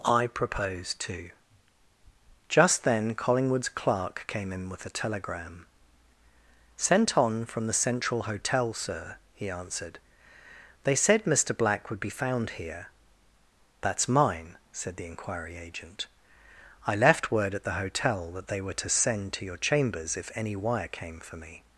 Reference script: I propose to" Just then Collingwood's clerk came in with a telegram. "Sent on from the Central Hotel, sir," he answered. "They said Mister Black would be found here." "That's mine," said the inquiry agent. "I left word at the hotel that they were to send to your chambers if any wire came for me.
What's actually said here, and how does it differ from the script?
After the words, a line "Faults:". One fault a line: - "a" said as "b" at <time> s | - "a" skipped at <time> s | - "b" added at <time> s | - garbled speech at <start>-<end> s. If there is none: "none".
I propose to" Just then Collingwood's clerk came in with a telegram. "Sent on from the Central Hotel, sir," he answered. "They said Mister Black would be found here." "That's mine," said the inquiry agent. "I left word at the hotel that they were to send to your chambers if any wire came for me.
Faults:
none